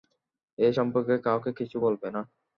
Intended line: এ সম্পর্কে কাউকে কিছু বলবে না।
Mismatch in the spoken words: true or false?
false